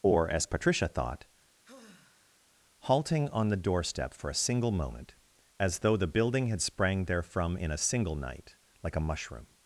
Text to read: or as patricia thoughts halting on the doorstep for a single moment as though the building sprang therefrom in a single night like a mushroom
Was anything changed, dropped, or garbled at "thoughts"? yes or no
yes